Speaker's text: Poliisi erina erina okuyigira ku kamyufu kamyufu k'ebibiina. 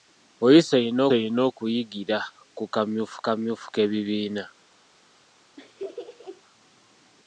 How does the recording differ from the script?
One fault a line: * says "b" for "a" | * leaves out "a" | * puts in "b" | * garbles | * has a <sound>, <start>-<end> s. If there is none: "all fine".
* has a laugh, 5.6-6.4 s